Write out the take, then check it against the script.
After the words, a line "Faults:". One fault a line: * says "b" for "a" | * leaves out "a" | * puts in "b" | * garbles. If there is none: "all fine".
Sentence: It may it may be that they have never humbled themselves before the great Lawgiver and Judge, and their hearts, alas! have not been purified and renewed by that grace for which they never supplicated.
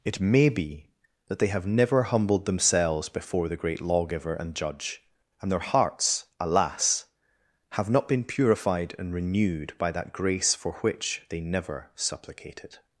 It may be that they have never humbled themselves before the great Lawgiver and Judge, and their hearts, alas! have not been purified and renewed by that grace for which they never supplicated.
Faults:
* leaves out "it may"